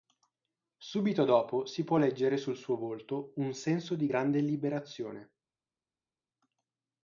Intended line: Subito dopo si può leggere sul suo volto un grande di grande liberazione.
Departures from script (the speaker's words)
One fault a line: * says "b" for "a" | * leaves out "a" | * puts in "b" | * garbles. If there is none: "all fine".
* says "senso" for "grande"